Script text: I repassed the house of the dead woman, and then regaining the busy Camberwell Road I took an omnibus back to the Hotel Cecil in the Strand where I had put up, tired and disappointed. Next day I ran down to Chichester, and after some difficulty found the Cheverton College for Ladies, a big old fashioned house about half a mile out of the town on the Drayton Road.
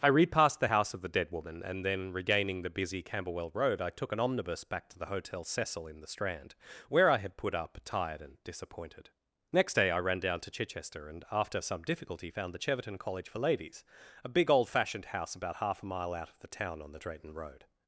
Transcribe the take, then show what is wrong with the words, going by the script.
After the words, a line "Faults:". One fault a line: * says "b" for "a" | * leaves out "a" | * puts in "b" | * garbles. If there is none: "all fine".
I repassed the house of the dead woman, and then regaining the busy Camberwell Road I took an omnibus back to the Hotel Cecil in the Strand where I had put up, tired and disappointed. Next day I ran down to Chichester, and after some difficulty found the Cheverton College for Ladies, a big old fashioned house about half a mile out of the town on the Drayton Road.
Faults:
all fine